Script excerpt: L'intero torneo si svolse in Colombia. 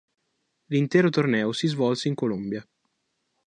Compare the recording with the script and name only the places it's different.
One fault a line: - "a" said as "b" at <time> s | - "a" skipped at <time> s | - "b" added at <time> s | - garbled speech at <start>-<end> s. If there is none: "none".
none